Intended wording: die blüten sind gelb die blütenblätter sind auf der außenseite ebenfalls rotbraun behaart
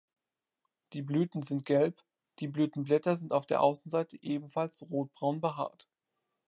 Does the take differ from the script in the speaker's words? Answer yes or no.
no